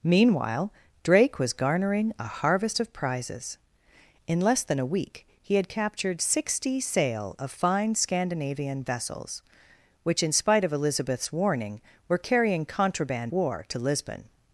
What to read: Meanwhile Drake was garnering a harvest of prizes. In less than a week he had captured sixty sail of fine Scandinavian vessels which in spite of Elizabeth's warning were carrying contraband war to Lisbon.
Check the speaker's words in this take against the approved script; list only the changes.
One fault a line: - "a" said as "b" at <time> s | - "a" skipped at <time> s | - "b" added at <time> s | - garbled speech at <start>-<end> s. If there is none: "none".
none